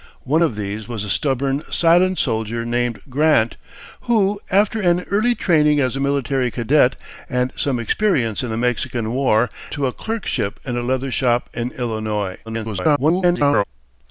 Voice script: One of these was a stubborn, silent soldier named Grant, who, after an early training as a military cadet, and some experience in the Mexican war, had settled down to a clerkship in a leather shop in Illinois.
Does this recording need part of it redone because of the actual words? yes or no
yes